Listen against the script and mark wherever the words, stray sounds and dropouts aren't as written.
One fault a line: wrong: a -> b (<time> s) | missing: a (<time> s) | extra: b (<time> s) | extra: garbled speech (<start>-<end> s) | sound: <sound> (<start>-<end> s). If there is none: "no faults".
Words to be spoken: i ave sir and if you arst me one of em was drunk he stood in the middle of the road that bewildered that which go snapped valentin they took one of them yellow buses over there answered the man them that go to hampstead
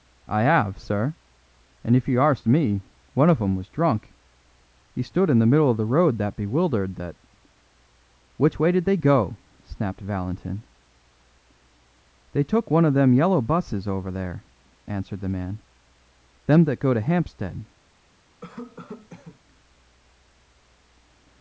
extra: way did they (8.6 s)
sound: cough (18.4-19.4 s)